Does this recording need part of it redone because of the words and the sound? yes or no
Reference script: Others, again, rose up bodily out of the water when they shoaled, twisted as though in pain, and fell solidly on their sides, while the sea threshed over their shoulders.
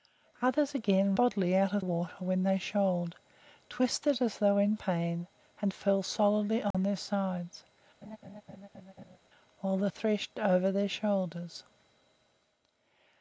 yes